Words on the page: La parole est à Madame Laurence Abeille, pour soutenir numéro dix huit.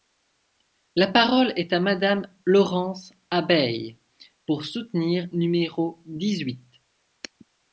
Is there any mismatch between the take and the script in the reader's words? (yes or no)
no